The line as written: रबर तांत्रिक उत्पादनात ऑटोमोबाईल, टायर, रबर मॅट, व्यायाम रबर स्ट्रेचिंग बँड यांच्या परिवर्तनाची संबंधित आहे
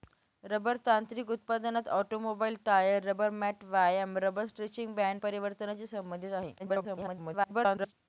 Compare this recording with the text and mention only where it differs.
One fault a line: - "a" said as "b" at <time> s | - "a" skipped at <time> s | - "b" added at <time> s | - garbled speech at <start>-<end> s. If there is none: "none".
- "यांच्या" skipped at 5.2 s
- garbled speech at 6.6-7.9 s